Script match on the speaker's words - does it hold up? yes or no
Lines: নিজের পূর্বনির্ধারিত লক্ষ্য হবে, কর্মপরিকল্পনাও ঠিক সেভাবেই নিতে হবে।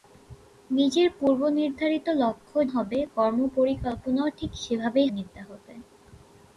yes